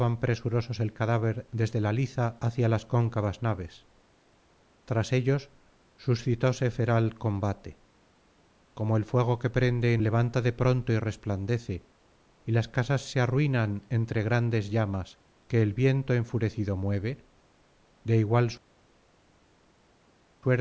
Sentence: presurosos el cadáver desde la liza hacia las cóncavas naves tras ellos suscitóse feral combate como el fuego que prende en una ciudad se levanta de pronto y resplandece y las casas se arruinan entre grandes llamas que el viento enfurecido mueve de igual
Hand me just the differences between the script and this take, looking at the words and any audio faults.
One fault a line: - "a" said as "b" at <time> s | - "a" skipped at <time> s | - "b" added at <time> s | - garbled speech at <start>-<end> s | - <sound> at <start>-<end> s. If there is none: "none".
- "una ciudad se" skipped at 10.0 s